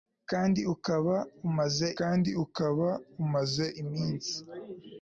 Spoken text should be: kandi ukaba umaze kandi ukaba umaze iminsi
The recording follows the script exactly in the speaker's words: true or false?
true